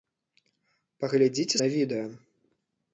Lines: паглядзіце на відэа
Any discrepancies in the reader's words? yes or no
no